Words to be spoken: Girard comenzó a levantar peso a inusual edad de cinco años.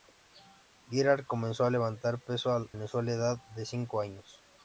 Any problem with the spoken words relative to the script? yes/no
no